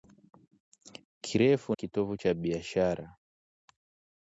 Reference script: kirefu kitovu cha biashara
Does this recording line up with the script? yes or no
yes